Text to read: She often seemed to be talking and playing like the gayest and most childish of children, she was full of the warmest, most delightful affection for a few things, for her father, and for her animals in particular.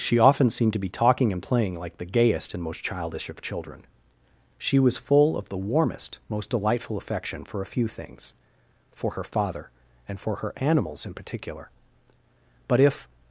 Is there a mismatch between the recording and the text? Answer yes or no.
yes